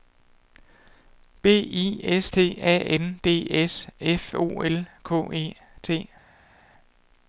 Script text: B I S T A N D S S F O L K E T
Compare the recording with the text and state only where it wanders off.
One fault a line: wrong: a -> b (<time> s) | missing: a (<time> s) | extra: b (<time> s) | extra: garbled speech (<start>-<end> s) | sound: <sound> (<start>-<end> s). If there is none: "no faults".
missing: S (3.9 s)